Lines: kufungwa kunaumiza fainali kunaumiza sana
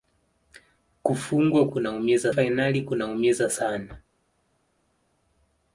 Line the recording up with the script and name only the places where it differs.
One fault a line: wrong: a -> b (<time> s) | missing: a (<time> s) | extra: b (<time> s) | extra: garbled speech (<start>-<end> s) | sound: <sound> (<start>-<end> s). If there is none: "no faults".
no faults